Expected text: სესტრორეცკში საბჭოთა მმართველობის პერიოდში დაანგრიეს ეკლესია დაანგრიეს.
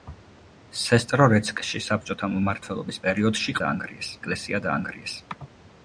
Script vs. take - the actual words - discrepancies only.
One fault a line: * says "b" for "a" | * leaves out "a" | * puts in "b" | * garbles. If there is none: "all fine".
all fine